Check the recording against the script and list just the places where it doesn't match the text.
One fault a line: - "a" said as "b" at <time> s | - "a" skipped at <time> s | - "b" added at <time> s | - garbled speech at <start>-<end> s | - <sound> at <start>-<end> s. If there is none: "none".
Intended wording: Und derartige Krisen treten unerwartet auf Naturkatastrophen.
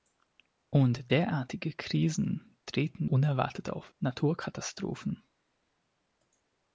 none